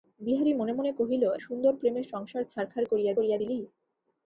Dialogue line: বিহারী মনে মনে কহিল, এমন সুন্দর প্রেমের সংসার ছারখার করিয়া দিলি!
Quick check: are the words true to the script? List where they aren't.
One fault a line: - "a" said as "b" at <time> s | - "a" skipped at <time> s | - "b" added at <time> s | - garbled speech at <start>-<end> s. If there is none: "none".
- "এমন" skipped at 1.2 s
- "করিয়া" added at 3.2 s